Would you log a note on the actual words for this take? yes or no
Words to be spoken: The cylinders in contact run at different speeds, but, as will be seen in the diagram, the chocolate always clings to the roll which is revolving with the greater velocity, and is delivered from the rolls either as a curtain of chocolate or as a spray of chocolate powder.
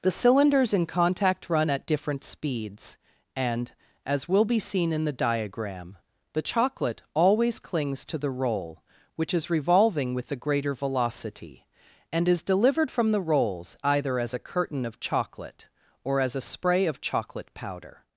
yes